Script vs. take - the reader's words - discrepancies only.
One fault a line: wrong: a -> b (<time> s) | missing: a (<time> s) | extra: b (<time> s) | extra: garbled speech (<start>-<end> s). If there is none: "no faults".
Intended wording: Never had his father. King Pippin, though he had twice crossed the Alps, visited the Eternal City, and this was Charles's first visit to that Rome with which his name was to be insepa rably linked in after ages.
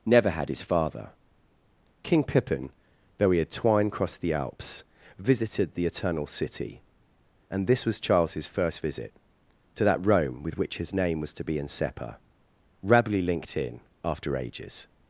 wrong: twice -> twine (3.5 s)